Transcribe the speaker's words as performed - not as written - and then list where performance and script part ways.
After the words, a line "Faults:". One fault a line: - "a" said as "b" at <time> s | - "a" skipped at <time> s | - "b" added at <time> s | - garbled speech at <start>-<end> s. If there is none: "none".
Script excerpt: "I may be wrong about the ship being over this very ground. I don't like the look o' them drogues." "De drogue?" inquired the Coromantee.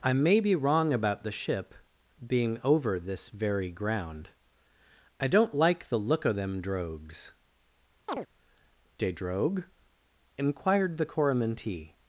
"I may be wrong about the ship being over this very ground. I don't like the look o' them drogues." "De drogue?" inquired the Coromantee.
Faults:
none